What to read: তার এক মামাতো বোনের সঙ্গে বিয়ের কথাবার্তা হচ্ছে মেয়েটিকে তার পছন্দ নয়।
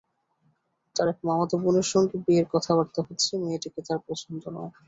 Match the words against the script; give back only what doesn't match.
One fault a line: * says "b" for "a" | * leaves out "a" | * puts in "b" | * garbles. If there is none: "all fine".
all fine